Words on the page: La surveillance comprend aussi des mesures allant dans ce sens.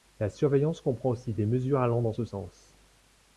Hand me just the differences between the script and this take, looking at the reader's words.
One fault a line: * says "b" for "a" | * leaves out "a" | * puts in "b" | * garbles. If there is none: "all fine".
all fine